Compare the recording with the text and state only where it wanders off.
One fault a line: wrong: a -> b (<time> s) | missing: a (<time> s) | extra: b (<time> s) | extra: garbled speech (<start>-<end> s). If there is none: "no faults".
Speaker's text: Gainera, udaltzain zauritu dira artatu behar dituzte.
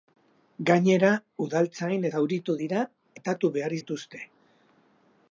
no faults